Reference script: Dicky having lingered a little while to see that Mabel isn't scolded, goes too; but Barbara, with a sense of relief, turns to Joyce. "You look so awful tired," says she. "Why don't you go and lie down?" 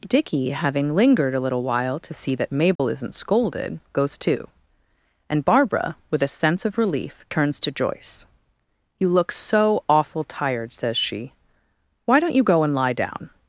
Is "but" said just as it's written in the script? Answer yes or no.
no